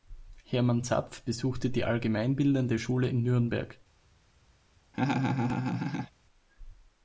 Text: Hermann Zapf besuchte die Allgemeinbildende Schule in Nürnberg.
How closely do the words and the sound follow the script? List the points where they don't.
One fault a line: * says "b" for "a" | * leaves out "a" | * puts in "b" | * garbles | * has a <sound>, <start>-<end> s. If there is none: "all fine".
* has a laugh, 4.9-6.1 s